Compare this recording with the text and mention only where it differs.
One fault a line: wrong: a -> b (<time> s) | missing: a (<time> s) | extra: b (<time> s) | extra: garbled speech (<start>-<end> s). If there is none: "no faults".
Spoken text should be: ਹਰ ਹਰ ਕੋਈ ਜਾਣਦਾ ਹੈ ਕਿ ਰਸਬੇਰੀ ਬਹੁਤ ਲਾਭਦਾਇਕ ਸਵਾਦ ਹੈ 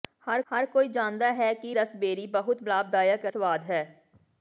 no faults